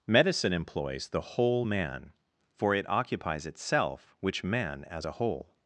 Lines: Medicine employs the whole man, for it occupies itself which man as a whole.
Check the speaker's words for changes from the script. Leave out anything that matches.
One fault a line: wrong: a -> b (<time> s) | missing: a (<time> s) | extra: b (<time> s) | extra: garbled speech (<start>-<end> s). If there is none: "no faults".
no faults